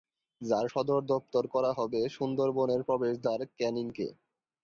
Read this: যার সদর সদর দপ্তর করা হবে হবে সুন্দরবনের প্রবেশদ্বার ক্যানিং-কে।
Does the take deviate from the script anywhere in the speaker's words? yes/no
yes